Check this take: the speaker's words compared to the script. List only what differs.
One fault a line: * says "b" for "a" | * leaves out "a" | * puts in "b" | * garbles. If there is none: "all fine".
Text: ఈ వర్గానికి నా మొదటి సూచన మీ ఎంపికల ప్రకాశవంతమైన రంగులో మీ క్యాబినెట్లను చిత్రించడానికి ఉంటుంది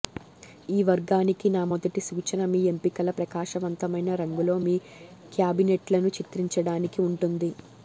all fine